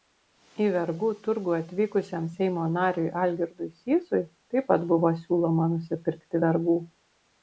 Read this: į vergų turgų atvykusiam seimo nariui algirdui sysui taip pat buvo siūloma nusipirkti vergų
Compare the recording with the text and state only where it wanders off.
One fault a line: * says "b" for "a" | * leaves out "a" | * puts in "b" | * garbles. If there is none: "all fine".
all fine